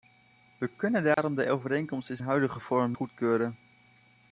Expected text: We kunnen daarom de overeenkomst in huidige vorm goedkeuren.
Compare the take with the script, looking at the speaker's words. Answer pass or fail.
pass